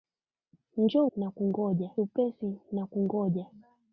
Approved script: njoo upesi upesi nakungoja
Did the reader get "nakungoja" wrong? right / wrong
right